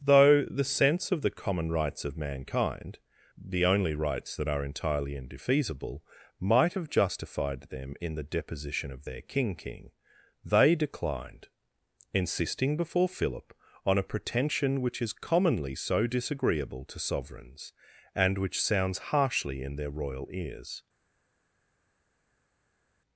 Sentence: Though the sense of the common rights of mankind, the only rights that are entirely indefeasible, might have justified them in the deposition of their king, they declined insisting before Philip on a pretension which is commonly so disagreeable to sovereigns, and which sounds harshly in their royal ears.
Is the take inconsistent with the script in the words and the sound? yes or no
yes